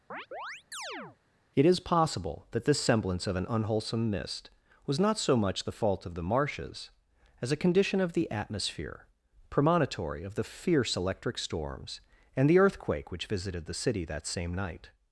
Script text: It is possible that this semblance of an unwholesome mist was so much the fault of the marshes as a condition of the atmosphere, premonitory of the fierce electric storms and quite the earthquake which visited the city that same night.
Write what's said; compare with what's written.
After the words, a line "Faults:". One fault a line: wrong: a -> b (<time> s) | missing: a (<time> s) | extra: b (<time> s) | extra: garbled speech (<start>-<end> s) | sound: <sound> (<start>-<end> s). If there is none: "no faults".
It is possible that this semblance of an unwholesome mist was not so much the fault of the marshes as a condition of the atmosphere, premonitory of the fierce electric storms and the earthquake which visited the city that same night.
Faults:
sound: chirp (0.1-1.2 s)
extra: not (5.0 s)
missing: quite (12.5 s)